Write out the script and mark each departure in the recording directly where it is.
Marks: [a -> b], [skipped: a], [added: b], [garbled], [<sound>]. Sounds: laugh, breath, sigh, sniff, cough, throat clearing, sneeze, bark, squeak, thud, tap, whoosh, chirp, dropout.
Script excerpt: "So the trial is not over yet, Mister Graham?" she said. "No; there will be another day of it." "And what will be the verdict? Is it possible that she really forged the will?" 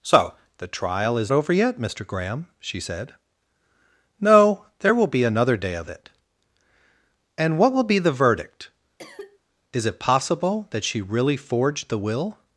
"So the trial is [skipped: not] over yet, Mister Graham?" she said. "No; there will be another day of it." "And what will be the verdict? [cough] Is it possible that she really forged the will?"